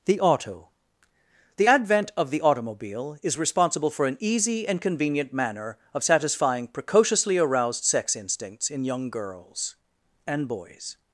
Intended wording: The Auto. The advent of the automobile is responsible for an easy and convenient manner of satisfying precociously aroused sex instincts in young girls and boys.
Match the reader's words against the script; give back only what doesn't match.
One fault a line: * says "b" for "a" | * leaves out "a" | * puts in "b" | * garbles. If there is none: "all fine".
all fine